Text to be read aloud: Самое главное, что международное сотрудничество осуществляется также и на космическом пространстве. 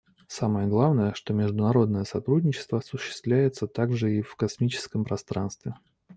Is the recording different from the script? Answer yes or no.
yes